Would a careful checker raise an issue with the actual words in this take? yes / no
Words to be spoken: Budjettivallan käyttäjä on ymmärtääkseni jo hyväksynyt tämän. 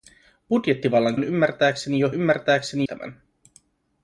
yes